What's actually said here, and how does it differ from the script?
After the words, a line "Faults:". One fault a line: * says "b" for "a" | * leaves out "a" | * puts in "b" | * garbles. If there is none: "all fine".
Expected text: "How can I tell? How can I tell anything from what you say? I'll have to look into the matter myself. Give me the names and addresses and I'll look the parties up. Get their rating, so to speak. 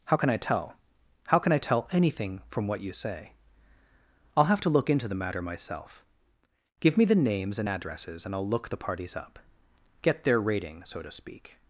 "How can I tell? How can I tell anything from what you say? I'll have to look into the matter myself. Give me the names and addresses and I'll look the parties up. Get their rating, so to speak.
Faults:
all fine